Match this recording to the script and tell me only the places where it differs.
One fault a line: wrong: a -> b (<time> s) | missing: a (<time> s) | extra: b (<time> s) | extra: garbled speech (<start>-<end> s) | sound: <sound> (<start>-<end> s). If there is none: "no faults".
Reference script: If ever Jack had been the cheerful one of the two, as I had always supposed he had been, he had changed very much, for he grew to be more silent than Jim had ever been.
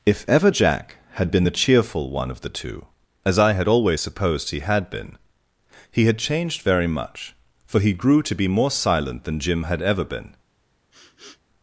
sound: sniff (10.9-11.4 s)